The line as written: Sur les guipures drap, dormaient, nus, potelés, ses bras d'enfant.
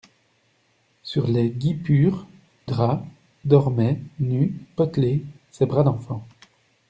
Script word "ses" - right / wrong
right